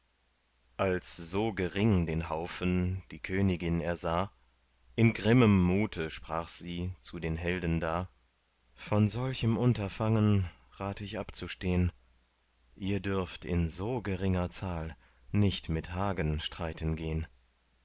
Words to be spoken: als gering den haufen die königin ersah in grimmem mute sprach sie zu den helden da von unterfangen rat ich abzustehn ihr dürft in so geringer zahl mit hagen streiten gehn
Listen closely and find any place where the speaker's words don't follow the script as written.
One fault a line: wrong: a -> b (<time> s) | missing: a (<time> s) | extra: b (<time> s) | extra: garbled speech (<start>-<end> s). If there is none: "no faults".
extra: so (1.1 s)
extra: solchem (9.1 s)
extra: nicht (15.3 s)